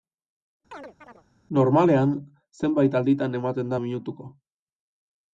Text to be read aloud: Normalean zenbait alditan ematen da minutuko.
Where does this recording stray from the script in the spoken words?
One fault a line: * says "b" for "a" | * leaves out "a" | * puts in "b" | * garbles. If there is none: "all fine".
all fine